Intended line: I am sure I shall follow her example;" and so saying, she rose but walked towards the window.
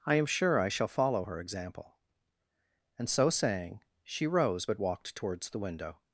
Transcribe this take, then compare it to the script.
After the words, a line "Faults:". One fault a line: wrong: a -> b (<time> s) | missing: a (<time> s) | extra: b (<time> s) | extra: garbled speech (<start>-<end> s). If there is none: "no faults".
I am sure I shall follow her example;" and so saying, she rose but walked towards the window.
Faults:
no faults